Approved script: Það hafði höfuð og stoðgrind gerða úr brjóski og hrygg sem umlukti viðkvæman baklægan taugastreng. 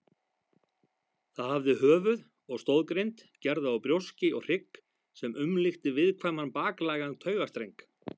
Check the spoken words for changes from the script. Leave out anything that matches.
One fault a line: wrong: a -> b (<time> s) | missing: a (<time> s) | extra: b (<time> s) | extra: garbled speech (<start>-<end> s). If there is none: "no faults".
no faults